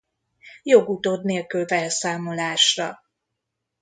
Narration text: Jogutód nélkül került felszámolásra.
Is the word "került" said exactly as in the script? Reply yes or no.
no